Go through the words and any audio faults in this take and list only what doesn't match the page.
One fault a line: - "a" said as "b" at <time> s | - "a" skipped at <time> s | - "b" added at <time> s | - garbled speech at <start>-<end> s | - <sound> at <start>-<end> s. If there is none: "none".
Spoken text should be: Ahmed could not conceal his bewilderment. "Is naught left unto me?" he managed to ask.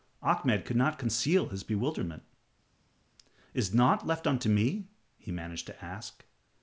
none